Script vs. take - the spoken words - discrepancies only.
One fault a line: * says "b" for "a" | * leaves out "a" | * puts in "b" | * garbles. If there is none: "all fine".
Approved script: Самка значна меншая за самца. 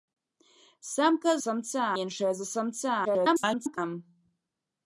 * says "самца" for "значна"
* garbles